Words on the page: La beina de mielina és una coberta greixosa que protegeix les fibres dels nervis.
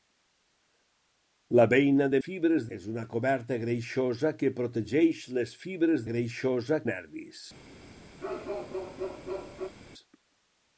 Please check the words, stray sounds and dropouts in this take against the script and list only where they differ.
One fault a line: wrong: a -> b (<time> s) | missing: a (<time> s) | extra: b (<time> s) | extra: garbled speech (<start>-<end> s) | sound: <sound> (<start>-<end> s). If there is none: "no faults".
wrong: mielina -> fibres (2.3 s)
wrong: dels -> greixosa (6.1 s)
sound: bark (8.2-9.7 s)